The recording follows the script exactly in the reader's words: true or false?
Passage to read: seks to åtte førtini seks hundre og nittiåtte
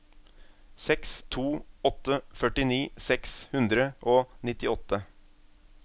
true